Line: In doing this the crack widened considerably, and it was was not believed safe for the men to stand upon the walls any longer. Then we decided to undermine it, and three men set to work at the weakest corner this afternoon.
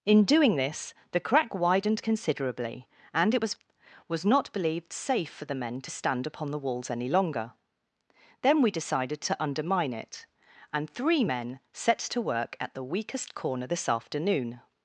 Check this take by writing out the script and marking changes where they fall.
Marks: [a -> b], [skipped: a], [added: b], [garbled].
In doing this the crack widened considerably, and it was was not believed safe for the men to stand upon the walls any longer. Then we decided to undermine it, and three men set to work at the weakest corner this afternoon.